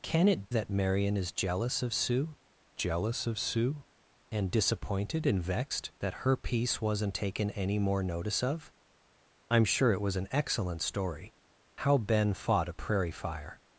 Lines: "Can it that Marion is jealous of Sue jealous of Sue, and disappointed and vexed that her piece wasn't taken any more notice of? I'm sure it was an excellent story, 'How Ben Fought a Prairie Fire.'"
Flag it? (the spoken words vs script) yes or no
no